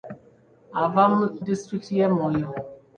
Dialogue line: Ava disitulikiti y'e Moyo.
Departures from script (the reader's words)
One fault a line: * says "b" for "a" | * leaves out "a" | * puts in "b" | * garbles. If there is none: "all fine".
all fine